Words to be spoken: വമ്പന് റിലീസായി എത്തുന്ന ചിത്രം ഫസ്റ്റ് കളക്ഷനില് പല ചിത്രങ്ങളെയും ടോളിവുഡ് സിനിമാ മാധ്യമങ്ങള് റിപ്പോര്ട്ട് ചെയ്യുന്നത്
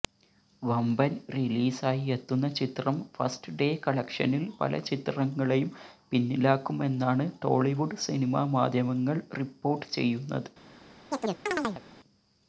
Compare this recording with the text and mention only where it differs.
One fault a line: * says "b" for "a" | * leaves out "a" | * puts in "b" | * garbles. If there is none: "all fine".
* puts in "ഡേ"
* puts in "പിന്നിലാക്കുമെന്നാണ്"